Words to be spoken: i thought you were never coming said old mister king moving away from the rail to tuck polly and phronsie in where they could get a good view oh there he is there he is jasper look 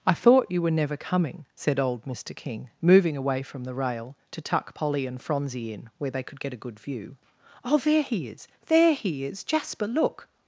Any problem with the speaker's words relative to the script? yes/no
no